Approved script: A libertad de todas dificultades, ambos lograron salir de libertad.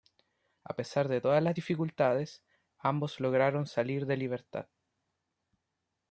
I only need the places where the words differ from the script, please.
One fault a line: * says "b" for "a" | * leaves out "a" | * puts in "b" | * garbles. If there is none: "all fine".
* says "pesar" for "libertad"
* puts in "las"